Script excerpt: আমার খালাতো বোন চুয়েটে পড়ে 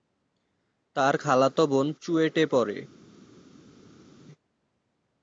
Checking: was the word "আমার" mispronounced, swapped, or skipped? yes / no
yes